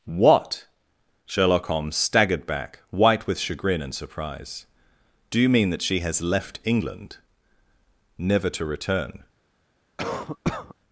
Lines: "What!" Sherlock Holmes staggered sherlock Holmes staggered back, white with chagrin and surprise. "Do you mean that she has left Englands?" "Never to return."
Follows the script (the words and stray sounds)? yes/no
no